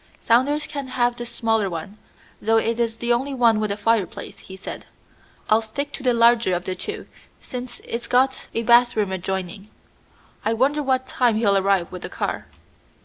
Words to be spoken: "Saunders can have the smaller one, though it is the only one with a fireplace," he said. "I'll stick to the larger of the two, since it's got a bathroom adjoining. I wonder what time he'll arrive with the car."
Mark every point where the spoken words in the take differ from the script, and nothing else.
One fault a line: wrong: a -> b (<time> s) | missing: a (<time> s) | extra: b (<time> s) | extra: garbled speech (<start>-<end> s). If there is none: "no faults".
no faults